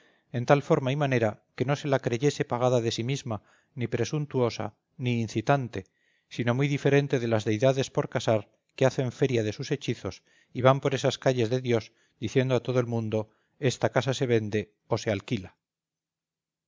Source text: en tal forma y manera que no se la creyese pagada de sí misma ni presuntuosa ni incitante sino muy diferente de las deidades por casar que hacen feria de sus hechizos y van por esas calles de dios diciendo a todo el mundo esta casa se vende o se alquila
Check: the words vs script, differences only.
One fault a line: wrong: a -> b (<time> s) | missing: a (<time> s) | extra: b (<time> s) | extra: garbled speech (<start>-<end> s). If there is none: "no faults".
no faults